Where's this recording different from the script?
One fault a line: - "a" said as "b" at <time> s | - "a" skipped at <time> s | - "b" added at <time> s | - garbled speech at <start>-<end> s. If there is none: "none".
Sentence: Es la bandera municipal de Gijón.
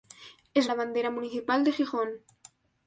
none